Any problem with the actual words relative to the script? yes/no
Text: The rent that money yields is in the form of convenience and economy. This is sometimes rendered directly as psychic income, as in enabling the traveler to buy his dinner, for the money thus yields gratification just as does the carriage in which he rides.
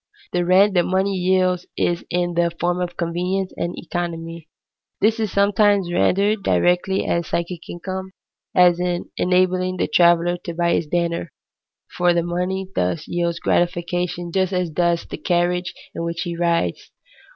no